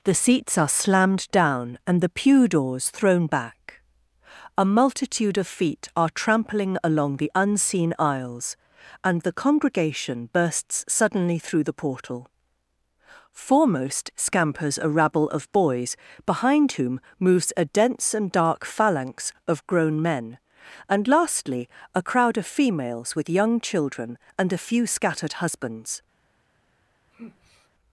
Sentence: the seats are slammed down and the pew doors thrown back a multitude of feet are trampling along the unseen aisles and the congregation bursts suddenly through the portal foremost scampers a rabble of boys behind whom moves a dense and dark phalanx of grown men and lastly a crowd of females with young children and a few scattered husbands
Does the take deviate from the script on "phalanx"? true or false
false